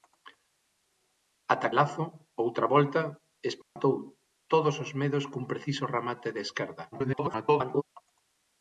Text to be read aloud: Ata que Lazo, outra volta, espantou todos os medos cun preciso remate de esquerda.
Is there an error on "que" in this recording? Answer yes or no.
yes